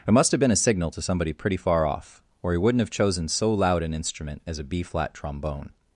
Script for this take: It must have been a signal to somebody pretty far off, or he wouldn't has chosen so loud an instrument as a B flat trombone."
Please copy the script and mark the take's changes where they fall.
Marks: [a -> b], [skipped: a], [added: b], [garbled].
It must have been a signal to somebody pretty far off, or he wouldn't [has -> have] chosen so loud an instrument as a B flat trombone."